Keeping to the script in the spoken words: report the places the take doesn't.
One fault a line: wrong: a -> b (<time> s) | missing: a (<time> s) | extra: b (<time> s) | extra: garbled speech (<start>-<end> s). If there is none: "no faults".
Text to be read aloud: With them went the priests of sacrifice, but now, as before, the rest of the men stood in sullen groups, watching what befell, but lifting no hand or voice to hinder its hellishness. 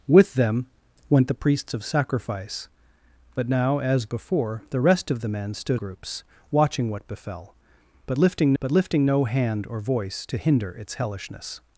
missing: in sullen (5.8 s)
extra: but lifting (8.6 s)